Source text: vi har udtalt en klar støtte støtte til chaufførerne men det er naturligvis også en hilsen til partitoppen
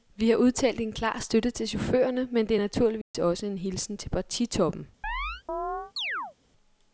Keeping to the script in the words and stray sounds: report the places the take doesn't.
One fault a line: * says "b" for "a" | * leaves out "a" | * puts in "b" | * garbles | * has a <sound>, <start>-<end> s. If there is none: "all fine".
* leaves out "støtte"
* has a dropout, 3.0-3.1 s
* has a chirp, 5.0-6.3 s